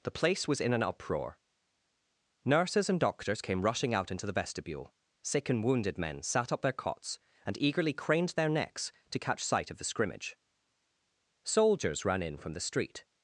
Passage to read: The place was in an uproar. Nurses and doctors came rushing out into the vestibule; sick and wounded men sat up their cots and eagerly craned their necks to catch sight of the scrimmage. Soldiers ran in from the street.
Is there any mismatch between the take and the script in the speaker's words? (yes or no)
no